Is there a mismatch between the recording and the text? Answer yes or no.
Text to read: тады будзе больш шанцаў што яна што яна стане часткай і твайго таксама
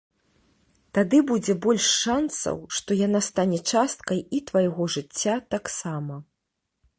yes